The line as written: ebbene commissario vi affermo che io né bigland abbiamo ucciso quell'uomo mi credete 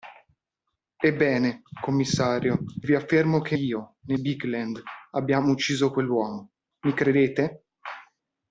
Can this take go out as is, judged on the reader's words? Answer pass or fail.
pass